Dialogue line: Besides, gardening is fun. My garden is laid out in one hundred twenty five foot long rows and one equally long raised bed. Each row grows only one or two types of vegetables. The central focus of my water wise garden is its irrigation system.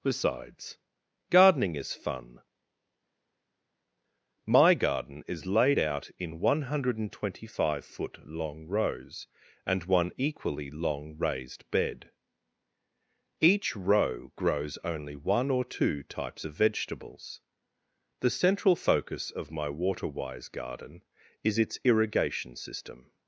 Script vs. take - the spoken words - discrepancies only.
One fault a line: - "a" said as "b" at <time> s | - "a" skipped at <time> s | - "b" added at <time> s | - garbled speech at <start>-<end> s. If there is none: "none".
none